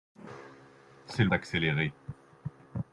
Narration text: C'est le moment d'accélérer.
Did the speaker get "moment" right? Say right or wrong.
wrong